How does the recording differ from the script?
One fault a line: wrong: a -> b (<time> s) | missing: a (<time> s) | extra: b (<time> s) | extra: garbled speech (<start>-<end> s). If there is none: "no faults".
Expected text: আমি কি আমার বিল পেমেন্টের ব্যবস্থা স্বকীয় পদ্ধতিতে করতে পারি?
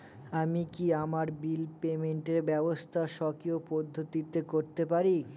no faults